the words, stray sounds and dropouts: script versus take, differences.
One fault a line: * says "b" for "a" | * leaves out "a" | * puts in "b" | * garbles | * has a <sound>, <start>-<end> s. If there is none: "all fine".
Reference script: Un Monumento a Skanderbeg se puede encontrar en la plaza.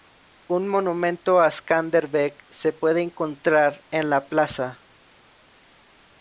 all fine